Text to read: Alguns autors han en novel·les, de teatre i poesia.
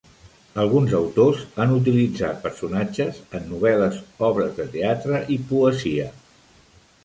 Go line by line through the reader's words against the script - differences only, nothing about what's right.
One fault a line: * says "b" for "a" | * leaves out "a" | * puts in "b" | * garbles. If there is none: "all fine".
* puts in "utilitzat personatges"
* puts in "obres"